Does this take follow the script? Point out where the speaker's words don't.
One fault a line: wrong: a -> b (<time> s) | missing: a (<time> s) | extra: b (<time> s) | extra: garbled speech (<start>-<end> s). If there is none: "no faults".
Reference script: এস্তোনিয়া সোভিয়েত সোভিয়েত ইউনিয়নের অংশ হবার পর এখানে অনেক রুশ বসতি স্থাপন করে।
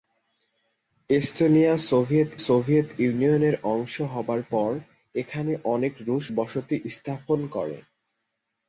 no faults